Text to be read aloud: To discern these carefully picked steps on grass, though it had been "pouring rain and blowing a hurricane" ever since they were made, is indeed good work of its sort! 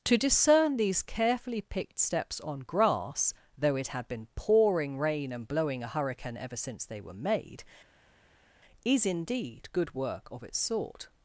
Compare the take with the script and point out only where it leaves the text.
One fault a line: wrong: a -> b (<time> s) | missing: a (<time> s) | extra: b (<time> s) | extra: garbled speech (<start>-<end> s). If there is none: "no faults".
no faults